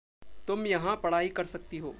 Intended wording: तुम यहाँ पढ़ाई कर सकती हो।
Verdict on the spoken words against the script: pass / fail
pass